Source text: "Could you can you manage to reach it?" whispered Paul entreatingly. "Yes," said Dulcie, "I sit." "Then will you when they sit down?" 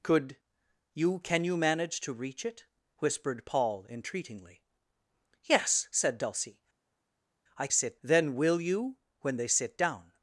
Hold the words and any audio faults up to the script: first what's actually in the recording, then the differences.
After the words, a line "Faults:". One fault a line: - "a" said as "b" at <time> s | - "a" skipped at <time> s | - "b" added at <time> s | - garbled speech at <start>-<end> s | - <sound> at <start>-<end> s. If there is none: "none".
"Could you can you manage to reach it?" whispered Paul entreatingly. "Yes," said Dulcie, "I sit." "Then will you when they sit down?"
Faults:
none